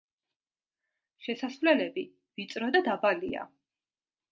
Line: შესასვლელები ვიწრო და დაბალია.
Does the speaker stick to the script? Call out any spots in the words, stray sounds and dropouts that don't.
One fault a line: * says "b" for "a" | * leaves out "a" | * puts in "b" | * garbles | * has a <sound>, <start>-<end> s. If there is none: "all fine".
all fine